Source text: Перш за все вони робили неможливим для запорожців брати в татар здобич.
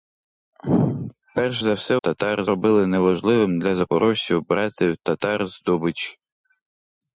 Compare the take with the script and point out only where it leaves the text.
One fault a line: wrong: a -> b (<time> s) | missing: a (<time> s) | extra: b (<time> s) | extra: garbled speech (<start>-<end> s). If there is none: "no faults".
wrong: вони -> татар (1.9 s)